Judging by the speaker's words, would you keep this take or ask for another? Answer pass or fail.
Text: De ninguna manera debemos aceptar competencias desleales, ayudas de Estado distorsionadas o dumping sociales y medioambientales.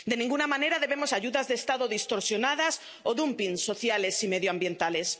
fail